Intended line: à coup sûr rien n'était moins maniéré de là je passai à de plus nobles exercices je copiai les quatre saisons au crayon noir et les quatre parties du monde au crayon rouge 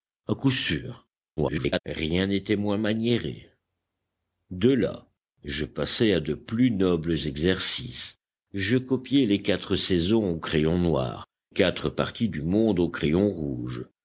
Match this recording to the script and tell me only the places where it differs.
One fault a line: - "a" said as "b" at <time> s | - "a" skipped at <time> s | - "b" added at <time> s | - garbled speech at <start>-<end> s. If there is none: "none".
- garbled speech at 1.4-1.8 s
- "et les" skipped at 11.2 s